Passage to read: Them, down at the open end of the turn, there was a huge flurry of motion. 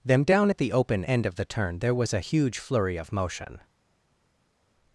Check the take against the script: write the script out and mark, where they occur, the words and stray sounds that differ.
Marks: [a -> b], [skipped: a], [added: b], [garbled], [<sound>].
Them, down at the open end of the turn, there was a huge flurry of motion.